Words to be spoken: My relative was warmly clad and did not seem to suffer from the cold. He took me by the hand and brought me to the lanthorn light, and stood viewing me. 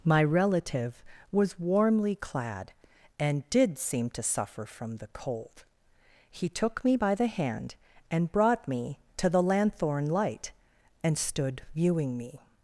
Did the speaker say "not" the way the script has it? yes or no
no